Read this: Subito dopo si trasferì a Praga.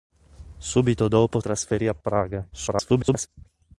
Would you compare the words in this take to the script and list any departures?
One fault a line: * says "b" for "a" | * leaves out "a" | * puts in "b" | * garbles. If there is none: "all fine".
* leaves out "si"
* garbles